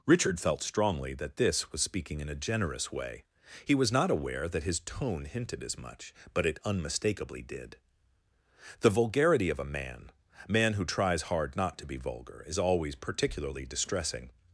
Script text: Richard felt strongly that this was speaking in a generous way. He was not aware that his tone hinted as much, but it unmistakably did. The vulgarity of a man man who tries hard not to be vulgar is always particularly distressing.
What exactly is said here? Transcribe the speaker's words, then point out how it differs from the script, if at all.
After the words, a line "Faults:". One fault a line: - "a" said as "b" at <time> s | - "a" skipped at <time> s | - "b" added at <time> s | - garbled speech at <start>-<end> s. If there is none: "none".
Richard felt strongly that this was speaking in a generous way. He was not aware that his tone hinted as much, but it unmistakably did. The vulgarity of a man man who tries hard not to be vulgar is always particularly distressing.
Faults:
none